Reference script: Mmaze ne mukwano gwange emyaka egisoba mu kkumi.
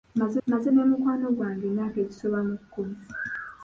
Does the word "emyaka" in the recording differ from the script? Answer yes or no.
no